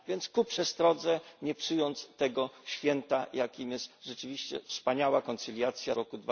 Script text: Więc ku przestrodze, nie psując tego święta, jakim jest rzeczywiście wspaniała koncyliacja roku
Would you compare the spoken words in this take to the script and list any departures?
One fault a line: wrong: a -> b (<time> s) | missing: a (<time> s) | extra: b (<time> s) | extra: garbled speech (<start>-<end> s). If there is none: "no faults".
no faults